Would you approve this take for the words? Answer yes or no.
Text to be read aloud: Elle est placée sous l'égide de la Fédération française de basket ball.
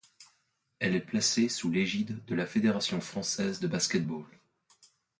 yes